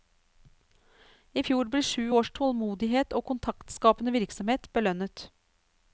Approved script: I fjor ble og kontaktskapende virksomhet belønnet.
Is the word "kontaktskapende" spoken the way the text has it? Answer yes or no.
yes